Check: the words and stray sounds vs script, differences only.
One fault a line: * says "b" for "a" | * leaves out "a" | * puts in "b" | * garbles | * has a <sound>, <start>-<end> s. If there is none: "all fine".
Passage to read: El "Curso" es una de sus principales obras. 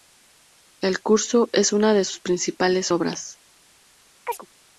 * has a chirp, 4.3-4.5 s